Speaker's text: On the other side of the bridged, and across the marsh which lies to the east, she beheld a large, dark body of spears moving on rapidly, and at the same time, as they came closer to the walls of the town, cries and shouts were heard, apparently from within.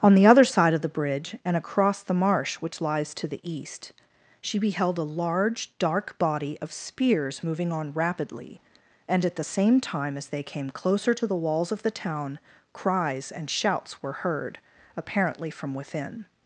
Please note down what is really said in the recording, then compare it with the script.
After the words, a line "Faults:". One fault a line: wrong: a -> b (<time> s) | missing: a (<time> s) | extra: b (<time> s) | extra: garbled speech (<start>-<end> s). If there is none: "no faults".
On the other side of the bridge, and across the marsh which lies to the east, she beheld a large, dark body of spears moving on rapidly, and at the same time, as they came closer to the walls of the town, cries and shouts were heard, apparently from within.
Faults:
wrong: bridged -> bridge (0.9 s)